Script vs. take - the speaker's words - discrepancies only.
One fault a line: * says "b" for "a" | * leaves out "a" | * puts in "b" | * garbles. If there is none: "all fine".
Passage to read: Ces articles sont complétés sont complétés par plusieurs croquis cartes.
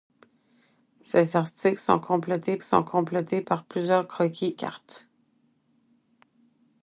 all fine